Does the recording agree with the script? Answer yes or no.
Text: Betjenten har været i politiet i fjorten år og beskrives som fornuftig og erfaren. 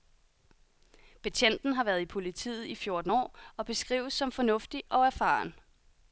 yes